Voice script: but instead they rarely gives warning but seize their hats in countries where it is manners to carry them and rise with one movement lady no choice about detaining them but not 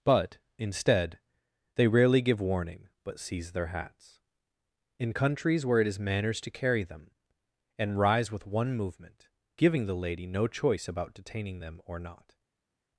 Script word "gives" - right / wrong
wrong